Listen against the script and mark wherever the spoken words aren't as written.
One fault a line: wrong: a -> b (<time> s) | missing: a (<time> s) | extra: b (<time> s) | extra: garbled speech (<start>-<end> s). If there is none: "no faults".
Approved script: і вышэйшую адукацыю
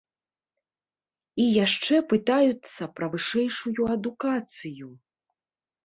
extra: яшчэ пытаюцца пра (1.6 s)